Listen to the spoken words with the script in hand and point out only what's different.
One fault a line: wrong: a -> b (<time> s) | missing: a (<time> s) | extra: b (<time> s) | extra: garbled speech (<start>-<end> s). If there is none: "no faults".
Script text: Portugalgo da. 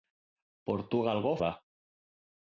no faults